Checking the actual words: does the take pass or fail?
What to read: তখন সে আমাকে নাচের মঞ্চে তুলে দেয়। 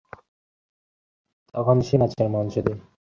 fail